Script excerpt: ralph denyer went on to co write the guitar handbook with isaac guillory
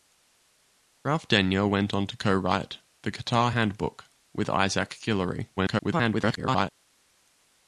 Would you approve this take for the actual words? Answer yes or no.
no